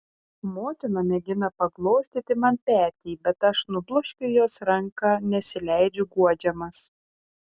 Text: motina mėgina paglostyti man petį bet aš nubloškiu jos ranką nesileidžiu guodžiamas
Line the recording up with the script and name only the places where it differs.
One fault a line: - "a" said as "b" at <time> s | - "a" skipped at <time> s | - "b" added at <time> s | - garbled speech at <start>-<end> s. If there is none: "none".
none